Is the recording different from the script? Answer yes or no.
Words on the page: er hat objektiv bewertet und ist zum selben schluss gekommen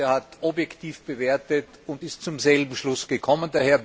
no